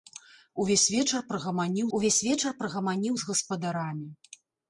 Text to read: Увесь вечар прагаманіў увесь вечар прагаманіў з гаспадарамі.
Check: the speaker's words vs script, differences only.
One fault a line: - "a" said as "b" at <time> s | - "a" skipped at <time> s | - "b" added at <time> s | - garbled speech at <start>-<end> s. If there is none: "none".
none